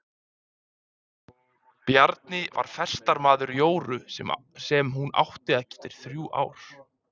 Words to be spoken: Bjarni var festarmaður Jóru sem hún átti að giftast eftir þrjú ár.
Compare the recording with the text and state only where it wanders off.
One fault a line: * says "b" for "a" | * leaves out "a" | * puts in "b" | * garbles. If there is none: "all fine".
* leaves out "giftast"